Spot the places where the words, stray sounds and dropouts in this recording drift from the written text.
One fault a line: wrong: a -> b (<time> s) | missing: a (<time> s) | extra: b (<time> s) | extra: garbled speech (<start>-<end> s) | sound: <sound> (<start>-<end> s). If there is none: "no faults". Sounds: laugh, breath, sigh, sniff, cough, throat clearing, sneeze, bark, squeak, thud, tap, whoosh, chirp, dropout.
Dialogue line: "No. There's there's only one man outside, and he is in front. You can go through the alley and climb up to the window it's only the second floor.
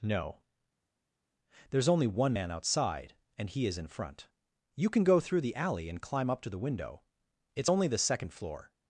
missing: there's (1.9 s)